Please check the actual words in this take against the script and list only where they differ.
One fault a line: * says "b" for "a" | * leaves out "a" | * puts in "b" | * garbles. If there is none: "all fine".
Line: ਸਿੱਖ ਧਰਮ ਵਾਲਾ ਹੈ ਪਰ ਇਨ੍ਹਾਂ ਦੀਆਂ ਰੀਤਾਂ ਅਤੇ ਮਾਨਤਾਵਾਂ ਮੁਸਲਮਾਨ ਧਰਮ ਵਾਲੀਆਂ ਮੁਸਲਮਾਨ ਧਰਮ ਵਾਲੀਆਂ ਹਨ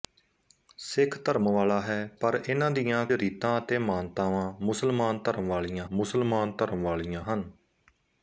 all fine